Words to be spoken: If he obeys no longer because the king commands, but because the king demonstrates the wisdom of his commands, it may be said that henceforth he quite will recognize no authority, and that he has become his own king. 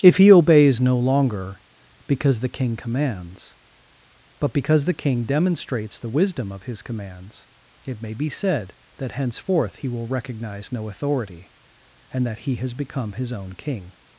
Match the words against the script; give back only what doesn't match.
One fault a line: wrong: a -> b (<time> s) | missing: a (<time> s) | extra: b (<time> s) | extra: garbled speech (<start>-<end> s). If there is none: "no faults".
missing: quite (9.9 s)